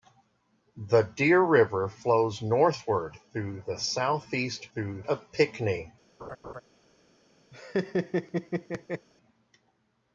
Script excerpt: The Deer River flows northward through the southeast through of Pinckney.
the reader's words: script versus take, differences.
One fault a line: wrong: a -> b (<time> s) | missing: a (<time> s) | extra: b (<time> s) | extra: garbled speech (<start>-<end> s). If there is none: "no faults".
no faults